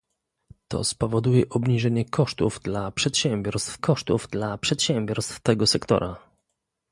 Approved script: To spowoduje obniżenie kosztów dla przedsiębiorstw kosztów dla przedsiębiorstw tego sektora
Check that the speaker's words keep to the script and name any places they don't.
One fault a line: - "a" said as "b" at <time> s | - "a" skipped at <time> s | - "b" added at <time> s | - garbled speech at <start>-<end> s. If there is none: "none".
none